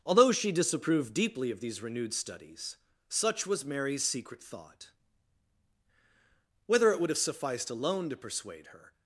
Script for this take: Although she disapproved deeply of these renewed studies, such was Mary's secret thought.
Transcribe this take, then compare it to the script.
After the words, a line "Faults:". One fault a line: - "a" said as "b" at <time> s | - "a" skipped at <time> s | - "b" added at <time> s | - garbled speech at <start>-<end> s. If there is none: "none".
Although she disapproved deeply of these renewed studies, such was Mary's secret thought. Whether it would have sufficed alone to persuade her
Faults:
- "Whether it would have sufficed alone to persuade her" added at 6.7 s